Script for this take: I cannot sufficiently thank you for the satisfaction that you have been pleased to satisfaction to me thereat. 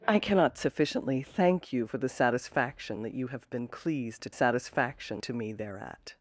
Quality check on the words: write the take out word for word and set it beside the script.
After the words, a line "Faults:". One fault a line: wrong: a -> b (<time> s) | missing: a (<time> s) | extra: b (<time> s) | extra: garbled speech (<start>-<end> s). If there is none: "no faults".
I cannot sufficiently thank you for the satisfaction that you have been pleased to satisfaction to me thereat.
Faults:
no faults